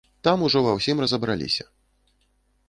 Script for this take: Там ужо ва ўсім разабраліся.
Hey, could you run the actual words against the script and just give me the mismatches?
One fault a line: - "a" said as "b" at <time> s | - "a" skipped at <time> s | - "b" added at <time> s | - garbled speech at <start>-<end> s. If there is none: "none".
none